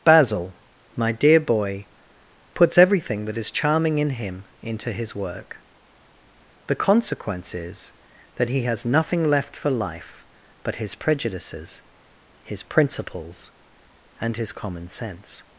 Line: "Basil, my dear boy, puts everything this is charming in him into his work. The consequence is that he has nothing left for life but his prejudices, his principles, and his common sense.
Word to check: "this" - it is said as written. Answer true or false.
false